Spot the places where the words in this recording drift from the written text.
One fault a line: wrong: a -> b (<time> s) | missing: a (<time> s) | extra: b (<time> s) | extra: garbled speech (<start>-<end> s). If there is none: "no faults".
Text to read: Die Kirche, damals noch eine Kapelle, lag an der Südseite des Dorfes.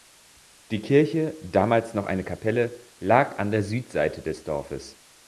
no faults